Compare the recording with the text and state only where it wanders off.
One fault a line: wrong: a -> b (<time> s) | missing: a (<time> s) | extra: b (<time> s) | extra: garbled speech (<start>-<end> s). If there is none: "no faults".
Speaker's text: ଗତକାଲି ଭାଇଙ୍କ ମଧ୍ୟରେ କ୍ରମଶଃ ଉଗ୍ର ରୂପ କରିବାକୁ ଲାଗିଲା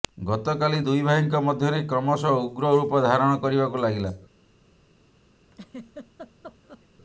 extra: ଦୁଇ (0.9 s)
extra: ଧାରଣ (3.1 s)